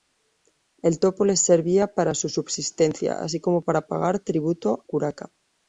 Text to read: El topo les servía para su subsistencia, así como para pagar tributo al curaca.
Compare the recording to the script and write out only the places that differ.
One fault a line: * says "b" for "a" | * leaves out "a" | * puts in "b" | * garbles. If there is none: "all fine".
* leaves out "al"